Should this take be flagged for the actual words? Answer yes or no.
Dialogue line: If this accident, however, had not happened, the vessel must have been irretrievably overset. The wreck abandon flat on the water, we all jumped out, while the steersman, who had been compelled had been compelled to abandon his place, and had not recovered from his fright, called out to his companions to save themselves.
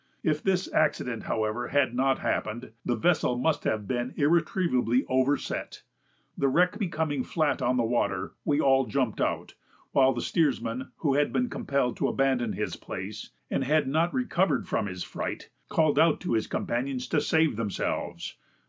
yes